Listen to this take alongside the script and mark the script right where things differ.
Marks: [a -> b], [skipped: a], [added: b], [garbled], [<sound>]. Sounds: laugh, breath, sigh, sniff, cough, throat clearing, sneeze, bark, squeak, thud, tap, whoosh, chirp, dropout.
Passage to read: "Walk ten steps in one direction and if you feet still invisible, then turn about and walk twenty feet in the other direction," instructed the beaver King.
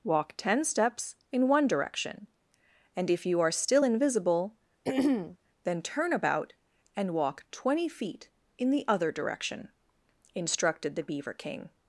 "Walk ten steps in one direction and if you [feet -> are] still invisible, [throat clearing] then turn about and walk twenty feet in the other direction," instructed the beaver King.